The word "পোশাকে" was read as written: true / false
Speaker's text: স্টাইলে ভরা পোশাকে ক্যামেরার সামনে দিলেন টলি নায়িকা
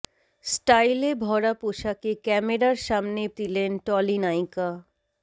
true